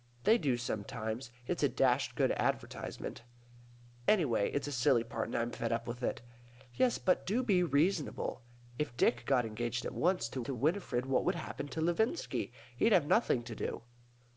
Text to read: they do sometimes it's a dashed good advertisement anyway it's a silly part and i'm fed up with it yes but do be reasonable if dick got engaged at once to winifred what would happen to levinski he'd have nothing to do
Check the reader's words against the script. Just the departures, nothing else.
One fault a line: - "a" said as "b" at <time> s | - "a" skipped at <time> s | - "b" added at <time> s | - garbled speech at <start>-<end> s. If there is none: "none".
- "to" added at 10.4 s